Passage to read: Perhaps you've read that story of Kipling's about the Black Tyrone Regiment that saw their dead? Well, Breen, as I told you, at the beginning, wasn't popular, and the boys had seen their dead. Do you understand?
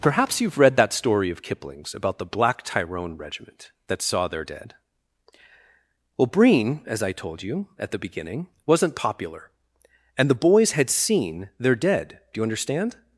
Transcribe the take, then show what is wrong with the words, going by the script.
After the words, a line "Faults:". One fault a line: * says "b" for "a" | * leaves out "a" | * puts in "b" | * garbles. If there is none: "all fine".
Perhaps you've read that story of Kipling's about the Black Tyrone Regiment that saw their dead? Well, Breen, as I told you, at the beginning, wasn't popular, and the boys had seen their dead. Do you understand?
Faults:
all fine